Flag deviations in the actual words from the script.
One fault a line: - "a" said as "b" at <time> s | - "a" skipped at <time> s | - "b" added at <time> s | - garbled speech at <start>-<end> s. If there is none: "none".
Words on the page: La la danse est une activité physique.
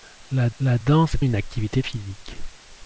none